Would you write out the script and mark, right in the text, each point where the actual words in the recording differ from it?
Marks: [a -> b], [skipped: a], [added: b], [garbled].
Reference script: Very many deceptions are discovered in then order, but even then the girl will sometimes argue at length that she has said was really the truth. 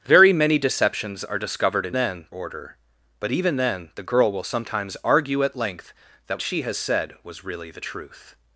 Very many deceptions are discovered in then order, but even then the girl will sometimes argue at length that she has said was really the truth.